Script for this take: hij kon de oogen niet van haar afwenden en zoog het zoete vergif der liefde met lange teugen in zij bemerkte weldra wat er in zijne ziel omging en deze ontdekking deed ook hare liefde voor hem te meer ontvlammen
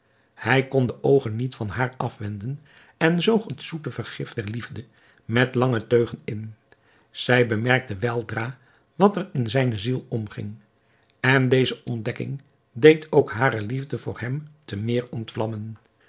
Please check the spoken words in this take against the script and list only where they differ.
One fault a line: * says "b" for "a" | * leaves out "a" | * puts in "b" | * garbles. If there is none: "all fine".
all fine